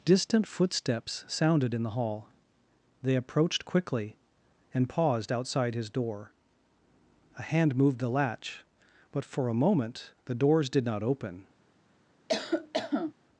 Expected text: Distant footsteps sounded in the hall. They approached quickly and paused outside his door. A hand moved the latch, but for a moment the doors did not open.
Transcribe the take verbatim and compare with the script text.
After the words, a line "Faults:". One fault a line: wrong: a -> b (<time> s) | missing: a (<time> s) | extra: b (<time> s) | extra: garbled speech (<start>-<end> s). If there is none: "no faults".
Distant footsteps sounded in the hall. They approached quickly and paused outside his door. A hand moved the latch, but for a moment the doors did not open.
Faults:
no faults